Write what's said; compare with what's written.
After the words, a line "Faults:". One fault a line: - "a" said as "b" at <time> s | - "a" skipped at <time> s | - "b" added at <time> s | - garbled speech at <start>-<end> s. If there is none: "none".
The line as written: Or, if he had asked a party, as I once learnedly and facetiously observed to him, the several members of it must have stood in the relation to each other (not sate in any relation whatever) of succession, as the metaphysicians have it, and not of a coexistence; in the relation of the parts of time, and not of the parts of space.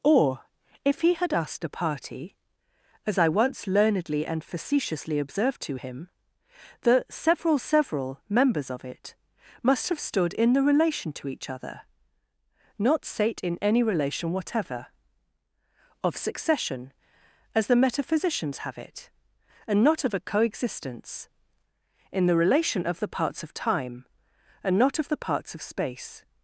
Or, if he had asked a party, as I once learnedly and facetiously observed to him, the several several members of it must have stood in the relation to each other (not sate in any relation whatever) of succession, as the metaphysicians have it, and not of a coexistence; in the relation of the parts of time, and not of the parts of space.
Faults:
- "several" added at 7.6 s